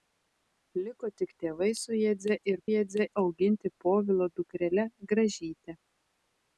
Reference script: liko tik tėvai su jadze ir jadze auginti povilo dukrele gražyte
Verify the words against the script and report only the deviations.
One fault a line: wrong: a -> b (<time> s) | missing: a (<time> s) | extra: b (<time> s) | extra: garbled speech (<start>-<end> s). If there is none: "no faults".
no faults